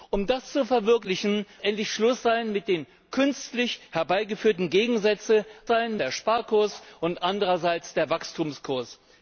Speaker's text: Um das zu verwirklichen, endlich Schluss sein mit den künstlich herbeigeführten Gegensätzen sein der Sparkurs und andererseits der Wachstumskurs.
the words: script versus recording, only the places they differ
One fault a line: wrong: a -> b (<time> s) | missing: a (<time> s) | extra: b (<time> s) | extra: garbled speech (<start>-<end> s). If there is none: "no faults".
no faults